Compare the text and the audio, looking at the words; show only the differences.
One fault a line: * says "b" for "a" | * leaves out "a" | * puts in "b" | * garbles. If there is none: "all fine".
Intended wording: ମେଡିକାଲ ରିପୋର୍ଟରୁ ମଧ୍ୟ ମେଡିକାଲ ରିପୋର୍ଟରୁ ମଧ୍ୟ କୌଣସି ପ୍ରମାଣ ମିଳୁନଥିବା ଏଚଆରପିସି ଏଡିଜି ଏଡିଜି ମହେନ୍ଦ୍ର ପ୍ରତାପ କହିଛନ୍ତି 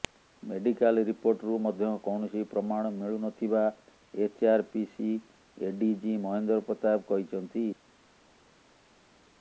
* leaves out "ମେଡିକାଲ ରିପୋର୍ଟରୁ ମଧ୍ୟ"
* leaves out "ଏଡିଜି"